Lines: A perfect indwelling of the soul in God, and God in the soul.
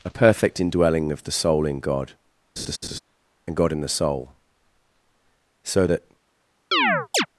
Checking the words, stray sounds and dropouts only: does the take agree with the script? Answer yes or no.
no